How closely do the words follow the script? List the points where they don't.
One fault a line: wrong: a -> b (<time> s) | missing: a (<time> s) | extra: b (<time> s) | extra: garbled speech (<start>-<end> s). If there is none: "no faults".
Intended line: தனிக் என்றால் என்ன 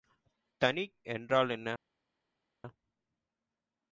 no faults